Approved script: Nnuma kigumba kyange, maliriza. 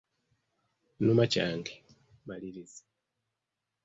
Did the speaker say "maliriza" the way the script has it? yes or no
yes